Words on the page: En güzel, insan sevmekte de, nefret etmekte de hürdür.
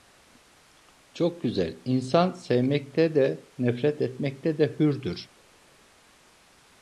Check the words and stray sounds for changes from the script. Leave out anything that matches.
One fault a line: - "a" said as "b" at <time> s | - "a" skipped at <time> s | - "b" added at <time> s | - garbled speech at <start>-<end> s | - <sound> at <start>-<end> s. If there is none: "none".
- "En" said as "Çok" at 1.1 s